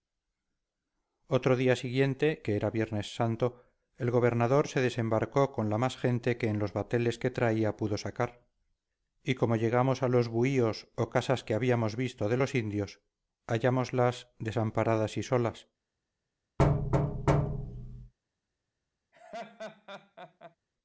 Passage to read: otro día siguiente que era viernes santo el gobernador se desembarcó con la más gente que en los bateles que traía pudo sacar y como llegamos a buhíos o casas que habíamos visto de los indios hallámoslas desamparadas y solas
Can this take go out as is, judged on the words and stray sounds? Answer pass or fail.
fail